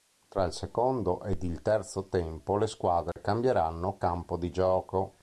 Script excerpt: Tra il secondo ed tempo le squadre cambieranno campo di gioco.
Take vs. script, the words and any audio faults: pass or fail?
fail